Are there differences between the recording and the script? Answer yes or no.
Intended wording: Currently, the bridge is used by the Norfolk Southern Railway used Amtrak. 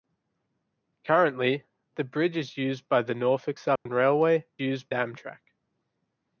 no